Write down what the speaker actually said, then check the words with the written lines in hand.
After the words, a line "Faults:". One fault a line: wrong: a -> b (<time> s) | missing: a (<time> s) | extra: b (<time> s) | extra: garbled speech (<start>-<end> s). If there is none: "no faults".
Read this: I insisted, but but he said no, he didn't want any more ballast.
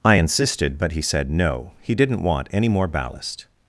I insisted, but he said no, he didn't want any more ballast.
Faults:
missing: but (0.9 s)